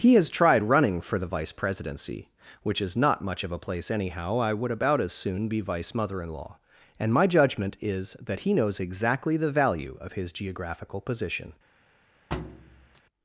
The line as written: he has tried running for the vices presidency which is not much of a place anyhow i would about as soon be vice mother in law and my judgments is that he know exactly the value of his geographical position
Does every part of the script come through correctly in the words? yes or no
no